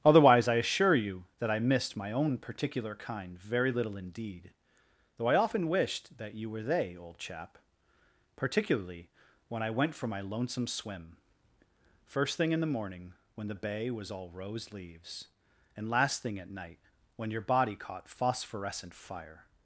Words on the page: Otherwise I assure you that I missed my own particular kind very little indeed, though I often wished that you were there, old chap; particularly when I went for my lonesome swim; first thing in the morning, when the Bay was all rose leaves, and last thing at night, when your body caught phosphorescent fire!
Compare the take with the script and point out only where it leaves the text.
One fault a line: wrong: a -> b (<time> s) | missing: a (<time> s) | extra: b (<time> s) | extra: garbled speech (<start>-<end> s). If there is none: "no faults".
wrong: there -> they (6.6 s)